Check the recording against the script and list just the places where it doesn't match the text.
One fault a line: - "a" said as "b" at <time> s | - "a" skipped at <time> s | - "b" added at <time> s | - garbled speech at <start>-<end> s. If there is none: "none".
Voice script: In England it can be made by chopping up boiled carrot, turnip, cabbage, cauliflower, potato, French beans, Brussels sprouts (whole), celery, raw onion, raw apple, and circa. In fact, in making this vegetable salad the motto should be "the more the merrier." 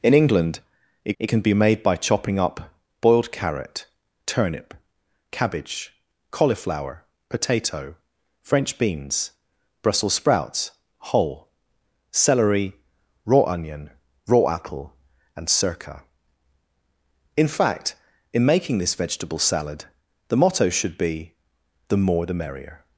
- "it" added at 1.2 s